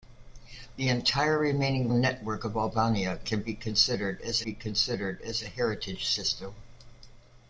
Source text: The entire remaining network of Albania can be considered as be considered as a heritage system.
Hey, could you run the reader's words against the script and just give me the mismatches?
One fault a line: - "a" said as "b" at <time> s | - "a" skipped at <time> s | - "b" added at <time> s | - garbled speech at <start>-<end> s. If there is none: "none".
none